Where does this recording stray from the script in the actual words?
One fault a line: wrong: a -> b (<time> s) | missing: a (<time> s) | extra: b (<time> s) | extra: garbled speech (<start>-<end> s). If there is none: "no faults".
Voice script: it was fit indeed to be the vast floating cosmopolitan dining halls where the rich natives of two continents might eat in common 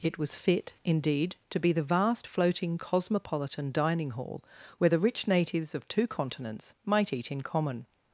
wrong: halls -> hall (4.1 s)